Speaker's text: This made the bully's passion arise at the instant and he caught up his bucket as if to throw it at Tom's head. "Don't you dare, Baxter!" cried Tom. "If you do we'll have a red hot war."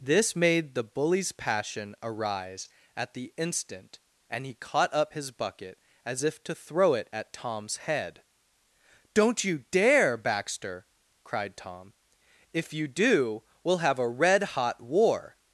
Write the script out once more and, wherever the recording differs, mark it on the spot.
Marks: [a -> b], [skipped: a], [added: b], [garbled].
This made the bully's passion arise at the instant and he caught up his bucket as if to throw it at Tom's head. "Don't you dare, Baxter!" cried Tom. "If you do we'll have a red hot war."